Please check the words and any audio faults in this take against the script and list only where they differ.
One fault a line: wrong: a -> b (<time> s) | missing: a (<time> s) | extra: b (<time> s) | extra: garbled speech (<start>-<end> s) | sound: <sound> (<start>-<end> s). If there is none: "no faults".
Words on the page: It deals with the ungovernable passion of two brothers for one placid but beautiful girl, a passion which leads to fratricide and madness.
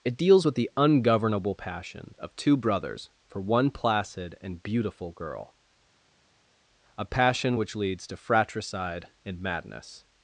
wrong: but -> and (4.4 s)